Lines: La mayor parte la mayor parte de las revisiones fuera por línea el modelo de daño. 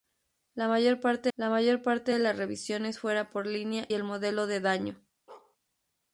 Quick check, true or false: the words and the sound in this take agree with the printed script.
false